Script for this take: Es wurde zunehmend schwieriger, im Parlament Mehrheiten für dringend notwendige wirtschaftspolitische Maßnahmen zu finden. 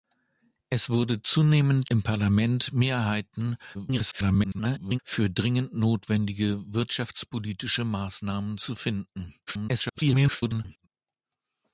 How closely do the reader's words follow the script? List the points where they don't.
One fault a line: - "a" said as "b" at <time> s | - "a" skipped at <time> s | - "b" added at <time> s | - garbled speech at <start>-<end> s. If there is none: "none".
- "schwieriger" skipped at 1.9 s
- garbled speech at 3.7-5.0 s
- garbled speech at 9.5-10.9 s